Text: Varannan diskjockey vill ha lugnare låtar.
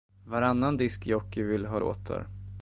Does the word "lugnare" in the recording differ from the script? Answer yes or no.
yes